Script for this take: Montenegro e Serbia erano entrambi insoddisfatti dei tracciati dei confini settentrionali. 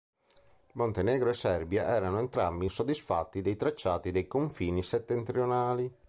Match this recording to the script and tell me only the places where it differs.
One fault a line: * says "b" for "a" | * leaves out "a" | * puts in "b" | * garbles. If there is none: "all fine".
all fine